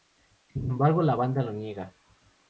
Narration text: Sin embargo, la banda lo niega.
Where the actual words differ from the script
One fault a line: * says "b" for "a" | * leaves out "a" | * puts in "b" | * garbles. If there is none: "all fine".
all fine